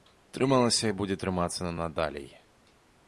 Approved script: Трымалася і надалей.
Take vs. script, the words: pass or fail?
fail